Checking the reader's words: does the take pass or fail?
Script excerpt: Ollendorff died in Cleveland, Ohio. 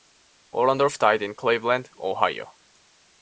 pass